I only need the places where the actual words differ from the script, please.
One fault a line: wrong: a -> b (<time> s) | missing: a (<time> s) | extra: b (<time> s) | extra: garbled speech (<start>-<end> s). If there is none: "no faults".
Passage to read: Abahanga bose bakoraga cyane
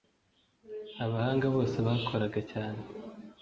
no faults